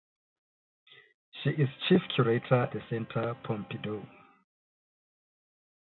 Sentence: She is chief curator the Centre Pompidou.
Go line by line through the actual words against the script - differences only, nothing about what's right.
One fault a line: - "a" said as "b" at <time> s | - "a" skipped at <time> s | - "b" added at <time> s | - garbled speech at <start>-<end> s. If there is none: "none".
none